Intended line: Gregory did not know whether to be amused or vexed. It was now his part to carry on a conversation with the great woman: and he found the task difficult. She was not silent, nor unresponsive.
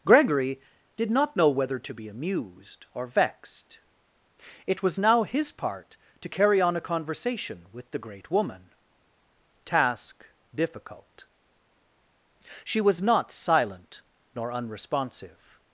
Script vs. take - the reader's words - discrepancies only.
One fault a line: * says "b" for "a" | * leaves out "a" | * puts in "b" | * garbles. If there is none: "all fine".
* leaves out "and he found the"